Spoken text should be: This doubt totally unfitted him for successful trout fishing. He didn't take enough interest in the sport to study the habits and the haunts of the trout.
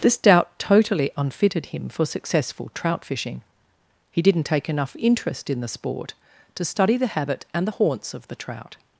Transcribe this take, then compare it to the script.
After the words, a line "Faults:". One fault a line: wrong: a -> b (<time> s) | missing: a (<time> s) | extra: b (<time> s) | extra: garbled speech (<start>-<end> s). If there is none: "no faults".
This doubt totally unfitted him for successful trout fishing. He didn't take enough interest in the sport to study the habit and the haunts of the trout.
Faults:
wrong: habits -> habit (7.1 s)